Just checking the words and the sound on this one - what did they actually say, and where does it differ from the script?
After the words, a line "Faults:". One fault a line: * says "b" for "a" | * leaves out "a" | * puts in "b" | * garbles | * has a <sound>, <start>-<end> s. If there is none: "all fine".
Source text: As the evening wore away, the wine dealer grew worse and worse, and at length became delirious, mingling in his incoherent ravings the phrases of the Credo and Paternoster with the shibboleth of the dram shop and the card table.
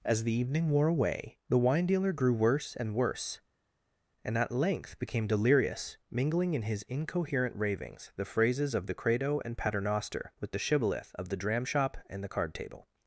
As the evening wore away, the wine dealer grew worse and worse, and at length became delirious, mingling in his incoherent ravings the phrases of the Credo and Paternoster with the shibboleth of the dram shop and the card table.
Faults:
all fine